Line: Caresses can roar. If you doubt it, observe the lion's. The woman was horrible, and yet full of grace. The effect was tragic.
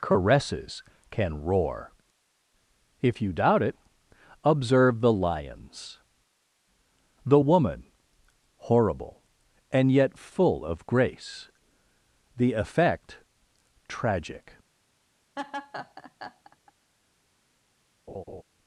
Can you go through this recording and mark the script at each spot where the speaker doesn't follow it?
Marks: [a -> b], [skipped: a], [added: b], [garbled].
Caresses can roar. If you doubt it, observe the lion's. The woman [skipped: was] horrible, and yet full of grace. The effect [skipped: was] tragic.